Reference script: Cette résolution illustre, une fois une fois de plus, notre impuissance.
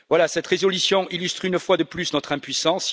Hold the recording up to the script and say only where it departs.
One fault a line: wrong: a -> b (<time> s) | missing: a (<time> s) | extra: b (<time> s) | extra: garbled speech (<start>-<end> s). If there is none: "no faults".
missing: une fois (1.8 s)